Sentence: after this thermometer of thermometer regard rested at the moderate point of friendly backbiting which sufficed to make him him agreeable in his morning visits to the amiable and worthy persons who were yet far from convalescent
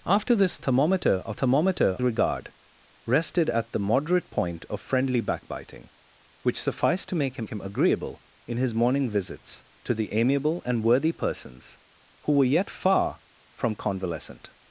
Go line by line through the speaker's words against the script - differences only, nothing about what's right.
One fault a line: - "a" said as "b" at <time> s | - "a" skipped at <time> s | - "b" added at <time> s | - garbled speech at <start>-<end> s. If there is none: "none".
none